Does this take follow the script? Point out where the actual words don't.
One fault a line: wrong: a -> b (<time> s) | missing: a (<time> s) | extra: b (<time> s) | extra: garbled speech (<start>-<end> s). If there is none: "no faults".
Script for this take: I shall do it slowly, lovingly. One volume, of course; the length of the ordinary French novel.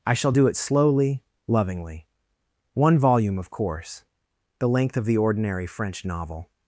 no faults